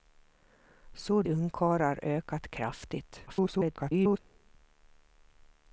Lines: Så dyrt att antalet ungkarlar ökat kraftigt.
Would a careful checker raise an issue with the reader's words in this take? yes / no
yes